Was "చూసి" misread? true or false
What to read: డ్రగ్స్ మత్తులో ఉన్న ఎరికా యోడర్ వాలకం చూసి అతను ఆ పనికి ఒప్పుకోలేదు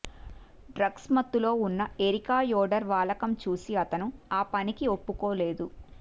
false